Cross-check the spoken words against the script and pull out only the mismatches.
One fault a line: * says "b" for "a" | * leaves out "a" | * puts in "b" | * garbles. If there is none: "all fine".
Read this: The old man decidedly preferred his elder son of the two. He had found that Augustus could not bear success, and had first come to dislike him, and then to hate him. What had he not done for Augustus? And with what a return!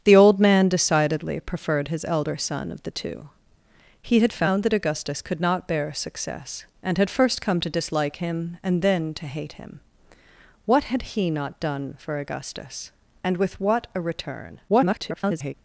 * garbles